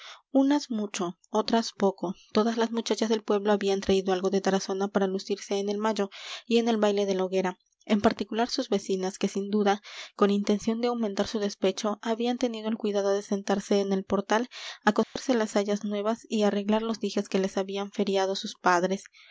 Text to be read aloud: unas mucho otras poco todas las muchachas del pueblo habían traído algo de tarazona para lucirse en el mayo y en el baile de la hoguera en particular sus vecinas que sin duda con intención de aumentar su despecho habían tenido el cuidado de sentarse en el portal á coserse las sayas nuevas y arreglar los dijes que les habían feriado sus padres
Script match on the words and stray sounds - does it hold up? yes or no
no